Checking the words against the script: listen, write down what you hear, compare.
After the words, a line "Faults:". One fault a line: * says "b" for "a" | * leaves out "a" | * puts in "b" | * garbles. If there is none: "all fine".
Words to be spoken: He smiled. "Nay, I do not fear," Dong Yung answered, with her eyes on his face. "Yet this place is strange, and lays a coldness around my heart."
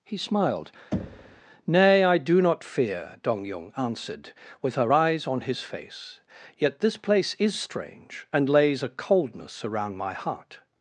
He smiled. "Nay, I do not fear," Dong Yung answered, with her eyes on his face. "Yet this place is strange, and lays a coldness around my heart."
Faults:
all fine